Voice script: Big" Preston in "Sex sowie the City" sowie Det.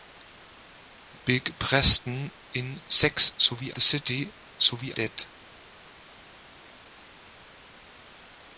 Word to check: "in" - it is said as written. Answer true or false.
true